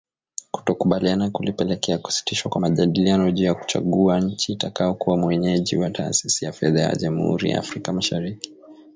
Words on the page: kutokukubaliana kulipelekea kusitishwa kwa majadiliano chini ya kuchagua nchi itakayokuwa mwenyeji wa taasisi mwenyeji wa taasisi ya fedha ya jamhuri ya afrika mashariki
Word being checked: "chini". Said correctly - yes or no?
no